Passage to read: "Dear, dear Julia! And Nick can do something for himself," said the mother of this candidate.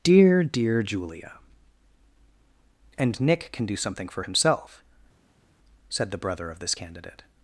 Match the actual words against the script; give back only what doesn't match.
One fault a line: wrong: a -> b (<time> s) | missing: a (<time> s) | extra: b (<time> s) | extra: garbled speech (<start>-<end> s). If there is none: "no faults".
wrong: mother -> brother (6.2 s)